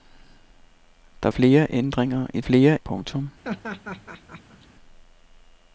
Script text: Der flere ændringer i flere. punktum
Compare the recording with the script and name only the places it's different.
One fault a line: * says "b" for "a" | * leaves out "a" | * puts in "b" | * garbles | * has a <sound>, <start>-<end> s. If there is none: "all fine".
* has a laugh, 3.4-4.7 s